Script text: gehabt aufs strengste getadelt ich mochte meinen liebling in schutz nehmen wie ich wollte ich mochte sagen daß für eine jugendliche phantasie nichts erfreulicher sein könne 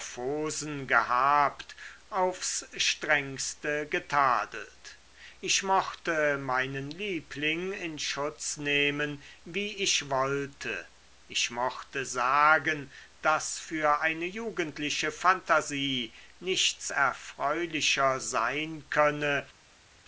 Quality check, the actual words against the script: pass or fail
pass